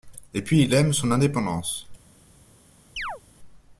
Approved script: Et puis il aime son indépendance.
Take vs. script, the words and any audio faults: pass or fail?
fail